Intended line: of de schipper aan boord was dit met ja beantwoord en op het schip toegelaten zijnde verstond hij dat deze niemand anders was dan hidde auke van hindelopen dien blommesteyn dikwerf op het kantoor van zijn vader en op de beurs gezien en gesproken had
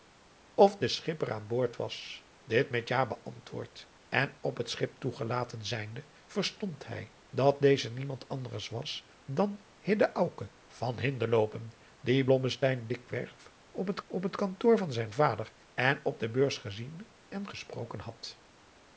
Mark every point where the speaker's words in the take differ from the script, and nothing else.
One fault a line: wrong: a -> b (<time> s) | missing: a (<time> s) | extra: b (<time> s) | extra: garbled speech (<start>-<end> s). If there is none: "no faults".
extra: op het (14.1 s)